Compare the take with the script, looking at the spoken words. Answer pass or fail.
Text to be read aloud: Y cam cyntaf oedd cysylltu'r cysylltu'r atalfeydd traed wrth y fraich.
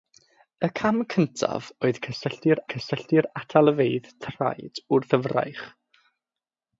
pass